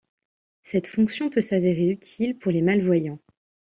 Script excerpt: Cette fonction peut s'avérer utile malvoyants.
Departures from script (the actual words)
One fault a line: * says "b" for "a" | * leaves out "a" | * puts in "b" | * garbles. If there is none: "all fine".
* puts in "pour les"